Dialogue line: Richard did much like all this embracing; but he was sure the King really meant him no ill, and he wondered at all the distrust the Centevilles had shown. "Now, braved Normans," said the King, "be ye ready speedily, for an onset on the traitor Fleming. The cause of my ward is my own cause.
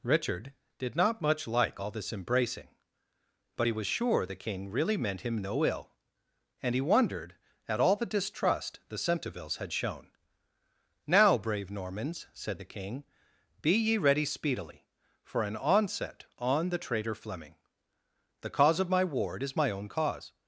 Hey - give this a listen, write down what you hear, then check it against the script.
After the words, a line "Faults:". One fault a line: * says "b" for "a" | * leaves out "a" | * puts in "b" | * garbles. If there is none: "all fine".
Richard did not much like all this embracing; but he was sure the King really meant him no ill, and he wondered at all the distrust the Centevilles had shown. "Now, brave Normans," said the King, "be ye ready speedily, for an onset on the traitor Fleming. The cause of my ward is my own cause.
Faults:
* puts in "not"
* says "brave" for "braved"